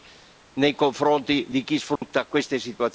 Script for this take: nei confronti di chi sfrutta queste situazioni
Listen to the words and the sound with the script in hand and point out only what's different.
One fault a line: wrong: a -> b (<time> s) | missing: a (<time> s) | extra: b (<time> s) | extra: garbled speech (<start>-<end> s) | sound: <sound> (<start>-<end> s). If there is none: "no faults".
sound: dropout (2.0-2.0 s)